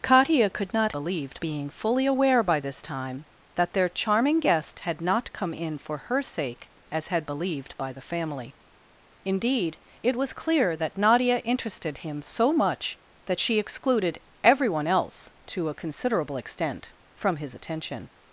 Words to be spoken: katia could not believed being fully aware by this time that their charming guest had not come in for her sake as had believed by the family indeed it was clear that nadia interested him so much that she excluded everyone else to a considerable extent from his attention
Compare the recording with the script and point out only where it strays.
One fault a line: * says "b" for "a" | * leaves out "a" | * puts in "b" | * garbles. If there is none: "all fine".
all fine